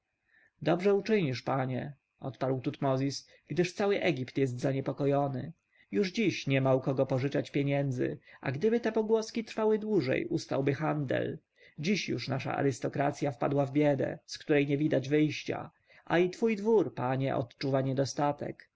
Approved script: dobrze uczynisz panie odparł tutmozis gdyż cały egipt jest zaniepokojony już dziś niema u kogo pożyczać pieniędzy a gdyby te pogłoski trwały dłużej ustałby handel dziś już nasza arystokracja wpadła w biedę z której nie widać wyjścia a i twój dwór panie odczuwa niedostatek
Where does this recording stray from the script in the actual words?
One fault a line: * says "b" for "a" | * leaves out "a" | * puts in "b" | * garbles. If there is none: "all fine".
all fine